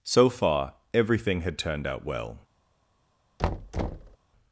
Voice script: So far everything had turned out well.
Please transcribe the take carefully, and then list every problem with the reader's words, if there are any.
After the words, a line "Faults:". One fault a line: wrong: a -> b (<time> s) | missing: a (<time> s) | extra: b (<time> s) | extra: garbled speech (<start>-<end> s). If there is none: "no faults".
So far everything had turned out well.
Faults:
no faults